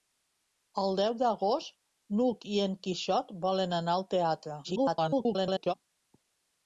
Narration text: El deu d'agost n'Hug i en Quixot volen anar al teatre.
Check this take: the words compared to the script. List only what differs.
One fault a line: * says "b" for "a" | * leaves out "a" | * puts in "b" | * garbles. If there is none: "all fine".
* garbles